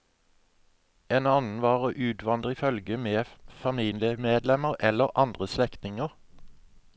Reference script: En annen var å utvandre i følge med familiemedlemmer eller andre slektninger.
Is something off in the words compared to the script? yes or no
no